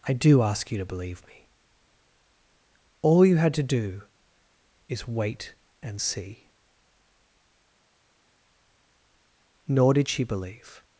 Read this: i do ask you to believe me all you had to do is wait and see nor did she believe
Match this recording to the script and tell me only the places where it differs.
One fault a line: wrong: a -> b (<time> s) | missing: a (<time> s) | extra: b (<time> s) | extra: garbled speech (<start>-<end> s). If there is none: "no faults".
no faults